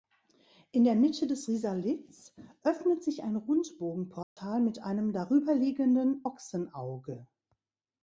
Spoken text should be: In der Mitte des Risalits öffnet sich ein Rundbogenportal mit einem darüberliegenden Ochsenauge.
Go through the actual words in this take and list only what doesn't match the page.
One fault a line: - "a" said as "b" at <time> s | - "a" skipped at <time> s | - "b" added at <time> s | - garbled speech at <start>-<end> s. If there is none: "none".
none